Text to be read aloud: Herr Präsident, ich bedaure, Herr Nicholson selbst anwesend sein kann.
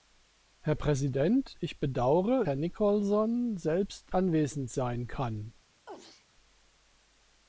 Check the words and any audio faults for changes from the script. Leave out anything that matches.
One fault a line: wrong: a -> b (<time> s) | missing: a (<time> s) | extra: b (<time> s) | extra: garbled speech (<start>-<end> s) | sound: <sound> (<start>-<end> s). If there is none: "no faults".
sound: sneeze (5.9-6.3 s)